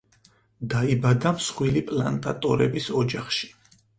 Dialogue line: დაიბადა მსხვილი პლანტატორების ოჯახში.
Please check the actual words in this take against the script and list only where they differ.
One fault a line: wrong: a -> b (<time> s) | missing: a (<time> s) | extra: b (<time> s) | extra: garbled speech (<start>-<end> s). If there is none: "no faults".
no faults